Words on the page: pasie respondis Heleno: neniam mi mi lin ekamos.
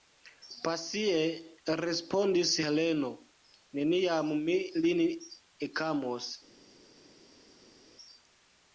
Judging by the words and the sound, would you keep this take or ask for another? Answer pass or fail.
fail